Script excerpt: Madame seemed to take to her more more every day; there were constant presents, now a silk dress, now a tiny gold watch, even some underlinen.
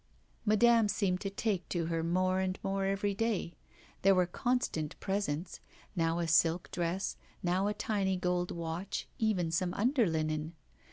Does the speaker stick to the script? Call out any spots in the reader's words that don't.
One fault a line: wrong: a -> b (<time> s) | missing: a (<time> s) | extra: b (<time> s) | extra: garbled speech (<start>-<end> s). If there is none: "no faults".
extra: and (2.4 s)